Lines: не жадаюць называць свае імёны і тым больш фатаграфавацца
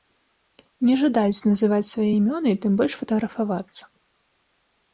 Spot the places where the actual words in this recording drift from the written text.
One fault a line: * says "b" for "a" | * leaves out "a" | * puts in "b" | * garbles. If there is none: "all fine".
all fine